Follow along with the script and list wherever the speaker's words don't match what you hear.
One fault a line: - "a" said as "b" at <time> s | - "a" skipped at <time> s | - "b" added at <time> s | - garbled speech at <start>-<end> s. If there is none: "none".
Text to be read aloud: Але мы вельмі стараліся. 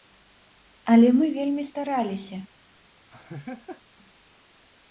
none